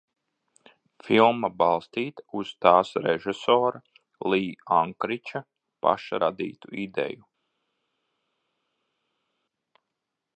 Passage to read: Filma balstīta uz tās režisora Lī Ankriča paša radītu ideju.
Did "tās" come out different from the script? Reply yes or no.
no